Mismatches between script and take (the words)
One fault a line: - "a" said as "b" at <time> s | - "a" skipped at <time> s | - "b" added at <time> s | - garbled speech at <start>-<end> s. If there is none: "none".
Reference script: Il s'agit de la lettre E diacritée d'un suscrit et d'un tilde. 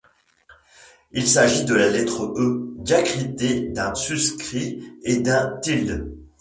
none